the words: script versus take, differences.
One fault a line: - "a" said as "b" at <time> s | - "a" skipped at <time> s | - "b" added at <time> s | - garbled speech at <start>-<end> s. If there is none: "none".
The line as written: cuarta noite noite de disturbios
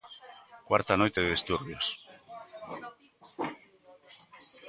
- "noite" skipped at 1.2 s